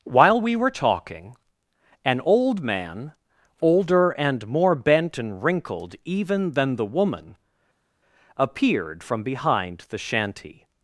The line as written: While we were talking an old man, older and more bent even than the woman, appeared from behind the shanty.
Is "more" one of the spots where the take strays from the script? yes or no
no